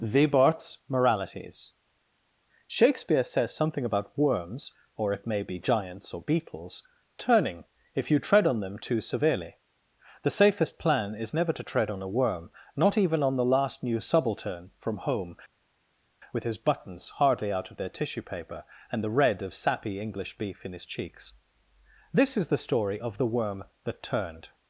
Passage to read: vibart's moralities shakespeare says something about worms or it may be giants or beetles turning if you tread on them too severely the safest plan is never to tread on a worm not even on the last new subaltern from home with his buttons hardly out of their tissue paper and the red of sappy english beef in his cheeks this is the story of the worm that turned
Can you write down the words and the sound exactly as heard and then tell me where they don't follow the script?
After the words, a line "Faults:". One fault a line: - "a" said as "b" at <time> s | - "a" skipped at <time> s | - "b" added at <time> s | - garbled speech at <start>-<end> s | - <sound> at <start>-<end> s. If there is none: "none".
vibart's moralities shakespeare says something about worms or it may be giants or beetles turning if you tread on them too severely the safest plan is never to tread on a worm not even on the last new subaltern from home with his buttons hardly out of their tissue paper and the red of sappy english beef in his cheeks this is the story of the worm that turned
Faults:
none